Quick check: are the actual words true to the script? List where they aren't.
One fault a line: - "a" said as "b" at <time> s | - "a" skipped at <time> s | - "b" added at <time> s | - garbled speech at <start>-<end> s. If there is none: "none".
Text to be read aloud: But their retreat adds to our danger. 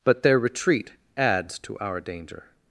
none